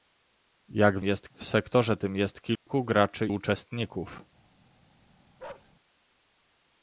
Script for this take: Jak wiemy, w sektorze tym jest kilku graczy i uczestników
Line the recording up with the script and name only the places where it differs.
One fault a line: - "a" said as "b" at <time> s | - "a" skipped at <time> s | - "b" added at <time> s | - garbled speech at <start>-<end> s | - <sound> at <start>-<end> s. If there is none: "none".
- "wiemy" said as "jest" at 1.0 s
- dropout at 2.6-2.7 s
- "i" skipped at 3.3 s
- bark at 5.4-5.7 s